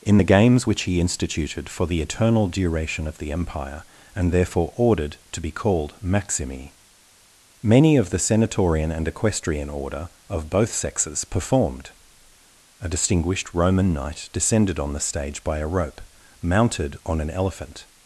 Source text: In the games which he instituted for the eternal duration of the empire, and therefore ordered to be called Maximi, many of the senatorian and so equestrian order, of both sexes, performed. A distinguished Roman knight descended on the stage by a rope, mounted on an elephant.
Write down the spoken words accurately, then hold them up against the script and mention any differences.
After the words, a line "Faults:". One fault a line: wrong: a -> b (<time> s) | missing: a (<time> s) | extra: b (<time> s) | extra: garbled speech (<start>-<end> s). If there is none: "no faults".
In the games which he instituted for the eternal duration of the empire, and therefore ordered to be called Maximi, many of the senatorian and equestrian order, of both sexes, performed. A distinguished Roman knight descended on the stage by a rope, mounted on an elephant.
Faults:
missing: so (9.1 s)